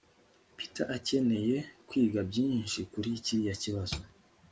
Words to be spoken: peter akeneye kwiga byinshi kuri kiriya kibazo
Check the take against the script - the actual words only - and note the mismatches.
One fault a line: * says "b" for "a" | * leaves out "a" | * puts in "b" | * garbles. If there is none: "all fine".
all fine